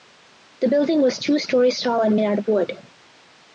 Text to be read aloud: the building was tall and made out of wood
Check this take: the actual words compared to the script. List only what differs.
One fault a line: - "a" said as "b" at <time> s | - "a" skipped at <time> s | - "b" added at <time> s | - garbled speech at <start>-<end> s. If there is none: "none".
- "two stories" added at 1.2 s